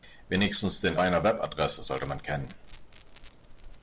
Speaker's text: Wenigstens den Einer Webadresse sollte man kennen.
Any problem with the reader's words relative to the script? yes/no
no